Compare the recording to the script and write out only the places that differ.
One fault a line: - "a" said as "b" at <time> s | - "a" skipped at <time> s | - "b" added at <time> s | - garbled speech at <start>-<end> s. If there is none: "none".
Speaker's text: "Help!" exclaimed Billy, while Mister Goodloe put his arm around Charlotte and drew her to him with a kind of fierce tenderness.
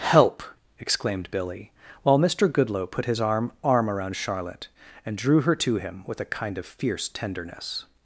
- "arm" added at 3.6 s